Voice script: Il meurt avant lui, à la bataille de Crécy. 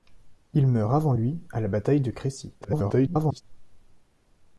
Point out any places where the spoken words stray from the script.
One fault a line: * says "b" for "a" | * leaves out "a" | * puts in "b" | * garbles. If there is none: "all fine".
* garbles